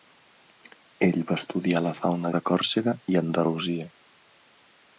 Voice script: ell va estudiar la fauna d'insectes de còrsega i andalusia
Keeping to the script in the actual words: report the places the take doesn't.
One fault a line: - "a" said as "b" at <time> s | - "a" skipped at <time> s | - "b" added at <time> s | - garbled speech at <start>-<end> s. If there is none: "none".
- "d'insectes" skipped at 2.3 s